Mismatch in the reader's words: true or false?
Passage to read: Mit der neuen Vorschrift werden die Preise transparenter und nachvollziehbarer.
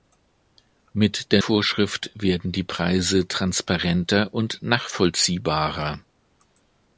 true